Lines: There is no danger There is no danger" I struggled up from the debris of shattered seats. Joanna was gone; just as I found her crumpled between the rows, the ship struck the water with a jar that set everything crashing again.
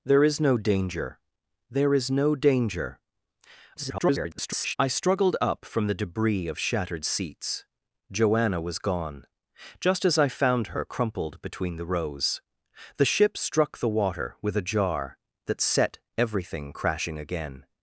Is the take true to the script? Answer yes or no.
no